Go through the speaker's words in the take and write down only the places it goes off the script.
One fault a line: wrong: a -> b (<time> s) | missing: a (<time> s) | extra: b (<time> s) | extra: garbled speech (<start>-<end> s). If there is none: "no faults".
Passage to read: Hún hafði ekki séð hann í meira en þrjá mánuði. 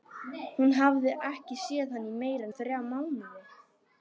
no faults